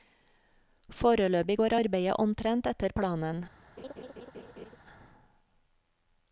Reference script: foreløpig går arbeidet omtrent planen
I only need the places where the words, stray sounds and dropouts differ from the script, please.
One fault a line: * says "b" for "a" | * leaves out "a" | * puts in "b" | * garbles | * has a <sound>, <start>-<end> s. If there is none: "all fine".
* puts in "etter"
* has a laugh, 3.8-4.8 s